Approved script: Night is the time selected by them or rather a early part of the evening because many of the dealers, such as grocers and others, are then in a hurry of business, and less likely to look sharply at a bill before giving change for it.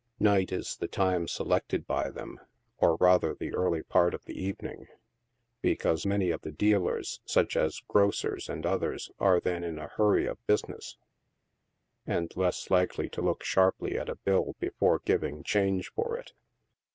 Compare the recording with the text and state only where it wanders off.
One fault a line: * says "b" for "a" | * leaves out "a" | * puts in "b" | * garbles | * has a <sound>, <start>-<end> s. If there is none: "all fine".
* says "the" for "a"